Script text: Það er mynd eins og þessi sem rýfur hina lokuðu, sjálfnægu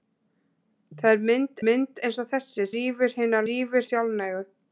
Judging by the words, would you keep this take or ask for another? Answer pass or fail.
fail